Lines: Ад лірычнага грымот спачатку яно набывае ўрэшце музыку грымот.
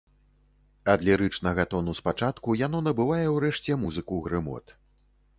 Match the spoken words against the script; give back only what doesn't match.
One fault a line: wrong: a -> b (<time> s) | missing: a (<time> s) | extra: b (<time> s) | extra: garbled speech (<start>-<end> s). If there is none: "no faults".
wrong: грымот -> тону (1.7 s)